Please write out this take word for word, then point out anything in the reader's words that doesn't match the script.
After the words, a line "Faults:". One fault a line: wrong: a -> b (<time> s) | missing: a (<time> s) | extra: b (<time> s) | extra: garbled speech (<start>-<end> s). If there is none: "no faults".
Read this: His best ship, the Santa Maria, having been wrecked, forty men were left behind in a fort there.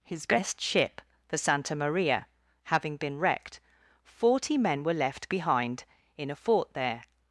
His best ship, the Santa Maria, having been wrecked, forty men were left behind in a fort there.
Faults:
no faults